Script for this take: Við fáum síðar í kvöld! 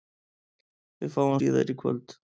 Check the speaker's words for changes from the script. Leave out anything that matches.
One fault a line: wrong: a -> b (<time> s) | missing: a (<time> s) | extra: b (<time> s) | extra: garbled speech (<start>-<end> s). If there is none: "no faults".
no faults